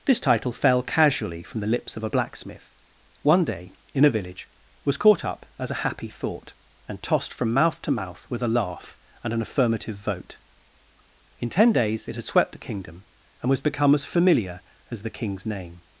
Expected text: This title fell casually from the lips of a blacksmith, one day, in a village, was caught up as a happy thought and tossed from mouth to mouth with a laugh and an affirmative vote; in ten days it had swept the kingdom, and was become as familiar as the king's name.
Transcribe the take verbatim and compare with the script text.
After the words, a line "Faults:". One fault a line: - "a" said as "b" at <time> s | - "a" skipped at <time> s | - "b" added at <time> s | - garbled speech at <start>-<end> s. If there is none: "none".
This title fell casually from the lips of a blacksmith, one day, in a village, was caught up as a happy thought and tossed from mouth to mouth with a laugh and an affirmative vote; in ten days it had swept the kingdom, and was become as familiar as the king's name.
Faults:
none